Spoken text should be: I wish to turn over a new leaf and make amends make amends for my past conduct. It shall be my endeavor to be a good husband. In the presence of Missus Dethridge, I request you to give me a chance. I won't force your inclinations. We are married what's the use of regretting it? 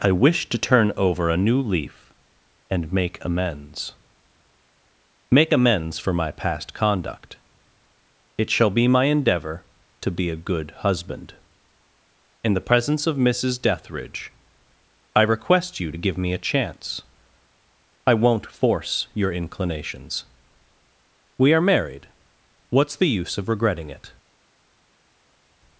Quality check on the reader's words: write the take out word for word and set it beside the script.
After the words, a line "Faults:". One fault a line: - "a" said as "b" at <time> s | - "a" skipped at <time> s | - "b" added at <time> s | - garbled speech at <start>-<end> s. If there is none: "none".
I wish to turn over a new leaf and make amends make amends for my past conduct. It shall be my endeavor to be a good husband. In the presence of Missus Dethridge, I request you to give me a chance. I won't force your inclinations. We are married what's the use of regretting it?
Faults:
none